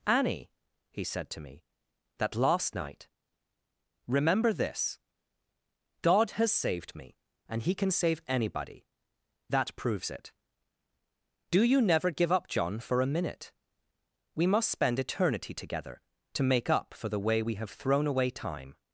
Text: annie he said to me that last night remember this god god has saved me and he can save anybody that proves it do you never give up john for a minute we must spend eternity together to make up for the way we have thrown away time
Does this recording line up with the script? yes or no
no